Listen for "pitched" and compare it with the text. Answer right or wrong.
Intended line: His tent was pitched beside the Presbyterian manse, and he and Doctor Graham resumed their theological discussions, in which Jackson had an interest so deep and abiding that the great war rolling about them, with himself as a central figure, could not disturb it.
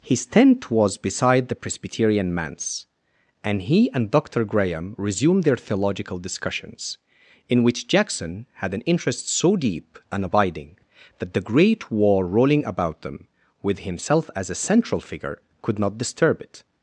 wrong